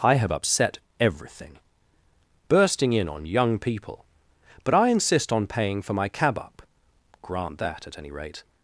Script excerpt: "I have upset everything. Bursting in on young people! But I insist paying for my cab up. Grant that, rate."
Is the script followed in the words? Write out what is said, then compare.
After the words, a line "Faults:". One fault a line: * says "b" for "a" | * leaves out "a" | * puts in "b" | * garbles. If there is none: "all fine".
"I have upset everything. Bursting in on young people! But I insist on paying for my cab up. Grant that, at any rate."
Faults:
* puts in "on"
* puts in "at any"